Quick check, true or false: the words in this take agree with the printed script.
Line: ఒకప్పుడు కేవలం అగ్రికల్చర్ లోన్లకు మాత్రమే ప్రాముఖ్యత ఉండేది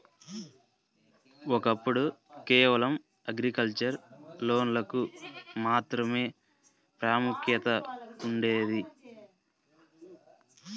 true